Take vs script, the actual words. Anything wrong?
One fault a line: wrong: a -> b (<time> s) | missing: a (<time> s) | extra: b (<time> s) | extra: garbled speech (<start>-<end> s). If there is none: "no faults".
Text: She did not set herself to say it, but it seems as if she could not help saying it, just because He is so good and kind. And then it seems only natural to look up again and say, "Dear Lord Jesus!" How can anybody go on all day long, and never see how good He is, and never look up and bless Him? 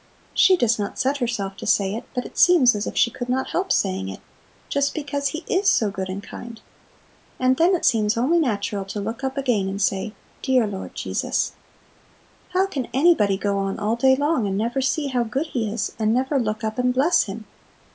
wrong: did -> does (0.6 s)